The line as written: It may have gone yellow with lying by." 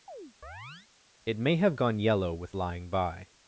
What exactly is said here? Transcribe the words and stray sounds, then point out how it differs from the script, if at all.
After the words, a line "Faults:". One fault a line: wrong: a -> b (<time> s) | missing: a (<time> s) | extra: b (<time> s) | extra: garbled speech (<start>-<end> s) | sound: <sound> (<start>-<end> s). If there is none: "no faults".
It may have gone yellow with lying by."
Faults:
sound: chirp (0.1-0.9 s)